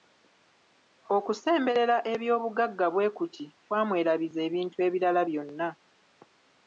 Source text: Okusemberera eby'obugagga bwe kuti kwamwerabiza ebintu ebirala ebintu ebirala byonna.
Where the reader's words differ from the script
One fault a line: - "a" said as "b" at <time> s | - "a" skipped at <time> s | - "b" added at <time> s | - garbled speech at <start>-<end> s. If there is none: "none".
- "ebintu ebirala" skipped at 5.2 s